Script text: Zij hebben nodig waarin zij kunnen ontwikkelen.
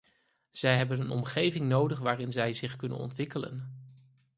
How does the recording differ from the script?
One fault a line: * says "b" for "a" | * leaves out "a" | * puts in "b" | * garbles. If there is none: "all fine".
* puts in "een omgeving"
* puts in "zich"